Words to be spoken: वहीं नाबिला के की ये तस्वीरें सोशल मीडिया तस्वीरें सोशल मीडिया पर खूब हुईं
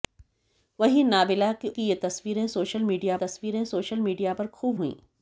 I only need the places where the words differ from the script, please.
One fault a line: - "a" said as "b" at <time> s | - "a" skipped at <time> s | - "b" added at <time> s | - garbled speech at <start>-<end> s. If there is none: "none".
none